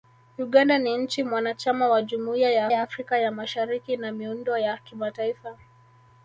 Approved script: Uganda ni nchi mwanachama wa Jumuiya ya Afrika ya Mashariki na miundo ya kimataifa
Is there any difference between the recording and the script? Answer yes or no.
yes